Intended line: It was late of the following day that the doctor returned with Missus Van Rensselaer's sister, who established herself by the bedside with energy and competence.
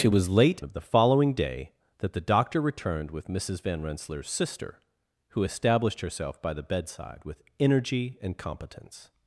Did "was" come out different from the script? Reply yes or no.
no